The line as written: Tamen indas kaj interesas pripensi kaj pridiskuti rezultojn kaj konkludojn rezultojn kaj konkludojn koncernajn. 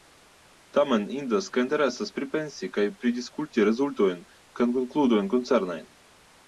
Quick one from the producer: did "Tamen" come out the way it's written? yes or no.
yes